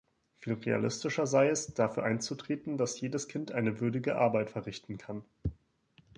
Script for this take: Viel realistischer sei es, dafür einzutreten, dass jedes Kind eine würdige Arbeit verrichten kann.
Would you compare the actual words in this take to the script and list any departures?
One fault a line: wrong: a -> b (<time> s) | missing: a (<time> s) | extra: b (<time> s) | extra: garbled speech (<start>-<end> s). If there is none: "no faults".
no faults